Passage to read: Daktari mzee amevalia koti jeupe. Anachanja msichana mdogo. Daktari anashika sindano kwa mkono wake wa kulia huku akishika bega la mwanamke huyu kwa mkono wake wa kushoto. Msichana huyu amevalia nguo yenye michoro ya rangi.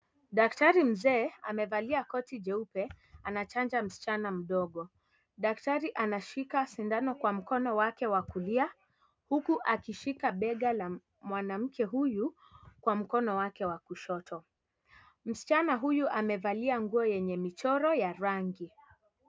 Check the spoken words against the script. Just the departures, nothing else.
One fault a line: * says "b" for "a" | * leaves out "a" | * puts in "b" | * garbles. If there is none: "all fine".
all fine